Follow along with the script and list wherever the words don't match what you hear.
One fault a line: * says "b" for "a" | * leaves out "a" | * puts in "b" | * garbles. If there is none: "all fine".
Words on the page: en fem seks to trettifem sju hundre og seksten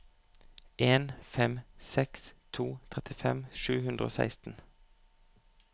all fine